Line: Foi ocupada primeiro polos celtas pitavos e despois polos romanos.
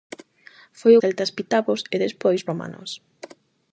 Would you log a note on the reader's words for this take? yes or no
yes